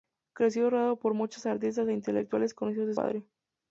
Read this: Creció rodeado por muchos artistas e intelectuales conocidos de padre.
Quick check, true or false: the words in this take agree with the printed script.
true